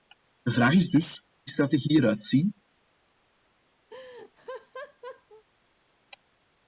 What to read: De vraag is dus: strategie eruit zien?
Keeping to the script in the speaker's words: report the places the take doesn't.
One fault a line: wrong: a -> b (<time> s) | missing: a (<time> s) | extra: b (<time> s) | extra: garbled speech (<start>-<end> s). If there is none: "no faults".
no faults